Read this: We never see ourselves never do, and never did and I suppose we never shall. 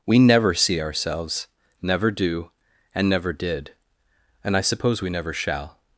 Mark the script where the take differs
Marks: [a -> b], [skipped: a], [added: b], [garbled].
We never see ourselves never do, and never did and I suppose we never shall.